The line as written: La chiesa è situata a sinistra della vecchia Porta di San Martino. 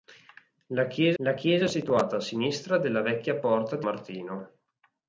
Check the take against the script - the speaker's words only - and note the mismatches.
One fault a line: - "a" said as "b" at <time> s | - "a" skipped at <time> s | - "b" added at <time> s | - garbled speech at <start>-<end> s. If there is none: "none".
- "la chiesa" added at 1.2 s
- "San" skipped at 3.9 s